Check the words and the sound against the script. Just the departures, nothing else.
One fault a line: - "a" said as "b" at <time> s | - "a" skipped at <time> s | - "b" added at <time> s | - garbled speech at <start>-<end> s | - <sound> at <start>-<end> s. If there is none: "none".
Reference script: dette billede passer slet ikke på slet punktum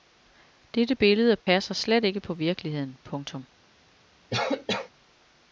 - dropout at 1.4-1.5 s
- "slet" said as "virkeligheden" at 2.3 s
- cough at 4.3-4.9 s